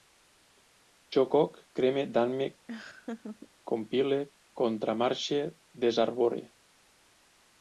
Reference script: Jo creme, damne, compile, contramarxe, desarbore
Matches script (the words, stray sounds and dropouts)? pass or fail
fail